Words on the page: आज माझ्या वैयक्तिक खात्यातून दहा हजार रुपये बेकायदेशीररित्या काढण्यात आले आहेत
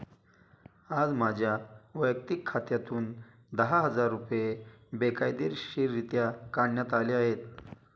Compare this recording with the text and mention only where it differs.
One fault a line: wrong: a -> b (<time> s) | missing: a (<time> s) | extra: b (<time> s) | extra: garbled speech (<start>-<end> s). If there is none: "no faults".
no faults